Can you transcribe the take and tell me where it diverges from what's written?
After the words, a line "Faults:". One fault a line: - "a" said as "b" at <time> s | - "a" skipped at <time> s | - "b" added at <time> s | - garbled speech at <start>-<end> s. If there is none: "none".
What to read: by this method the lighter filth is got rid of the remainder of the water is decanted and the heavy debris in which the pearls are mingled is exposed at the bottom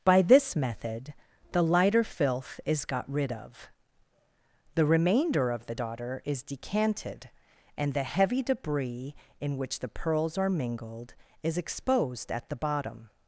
by this method the lighter filth is got rid of the remainder of the daughter is decanted and the heavy debris in which the pearls are mingled is exposed at the bottom
Faults:
- "water" said as "daughter" at 5.7 s